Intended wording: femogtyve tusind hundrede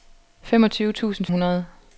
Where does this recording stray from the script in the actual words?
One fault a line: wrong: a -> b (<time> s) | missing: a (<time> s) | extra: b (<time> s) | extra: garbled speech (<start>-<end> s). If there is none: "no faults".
no faults